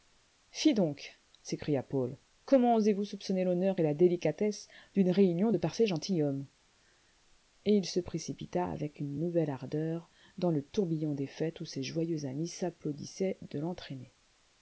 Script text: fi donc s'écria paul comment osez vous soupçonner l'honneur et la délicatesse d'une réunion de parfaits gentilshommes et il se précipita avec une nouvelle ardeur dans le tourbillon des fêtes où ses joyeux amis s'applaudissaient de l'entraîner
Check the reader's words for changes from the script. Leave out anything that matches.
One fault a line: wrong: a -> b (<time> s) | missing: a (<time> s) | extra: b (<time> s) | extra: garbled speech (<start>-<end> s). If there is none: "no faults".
no faults